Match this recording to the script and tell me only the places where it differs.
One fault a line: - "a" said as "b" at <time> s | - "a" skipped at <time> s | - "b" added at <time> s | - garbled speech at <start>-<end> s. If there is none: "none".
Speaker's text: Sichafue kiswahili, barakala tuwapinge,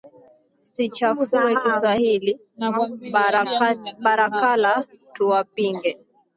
none